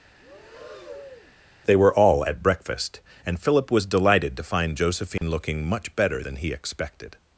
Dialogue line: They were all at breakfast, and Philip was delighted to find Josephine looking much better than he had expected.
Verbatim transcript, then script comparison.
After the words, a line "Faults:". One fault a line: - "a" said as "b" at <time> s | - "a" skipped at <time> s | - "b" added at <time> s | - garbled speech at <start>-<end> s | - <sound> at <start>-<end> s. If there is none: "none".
They were all at breakfast, and Philip was delighted to find Josephine looking much better than he expected.
Faults:
- breath at 0.2-1.3 s
- dropout at 5.2-5.2 s
- "had" skipped at 6.5 s